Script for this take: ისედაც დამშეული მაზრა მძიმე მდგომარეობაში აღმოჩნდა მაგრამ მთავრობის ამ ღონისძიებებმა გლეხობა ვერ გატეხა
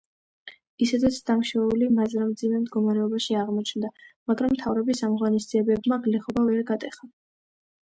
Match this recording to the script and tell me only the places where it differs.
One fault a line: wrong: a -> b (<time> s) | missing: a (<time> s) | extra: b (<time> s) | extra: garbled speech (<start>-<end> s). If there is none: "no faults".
no faults